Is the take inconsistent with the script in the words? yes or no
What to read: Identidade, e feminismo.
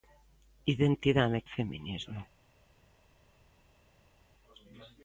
no